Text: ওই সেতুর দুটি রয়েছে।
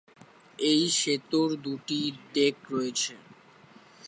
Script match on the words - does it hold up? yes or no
no